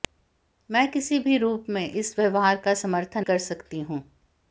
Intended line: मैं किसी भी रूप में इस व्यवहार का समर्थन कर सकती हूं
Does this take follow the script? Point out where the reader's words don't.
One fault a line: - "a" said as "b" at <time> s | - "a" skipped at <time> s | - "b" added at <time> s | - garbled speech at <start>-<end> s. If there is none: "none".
none